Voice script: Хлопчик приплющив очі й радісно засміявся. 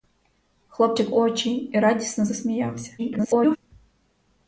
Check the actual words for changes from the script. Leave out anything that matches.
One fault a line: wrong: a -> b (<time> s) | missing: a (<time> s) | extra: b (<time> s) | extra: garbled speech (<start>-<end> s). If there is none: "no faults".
missing: приплющив (1.1 s)
extra: garbled speech (3.0-3.6 s)